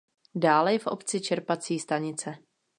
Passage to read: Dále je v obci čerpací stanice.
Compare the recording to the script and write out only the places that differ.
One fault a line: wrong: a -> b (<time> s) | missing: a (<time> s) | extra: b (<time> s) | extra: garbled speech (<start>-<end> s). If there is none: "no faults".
no faults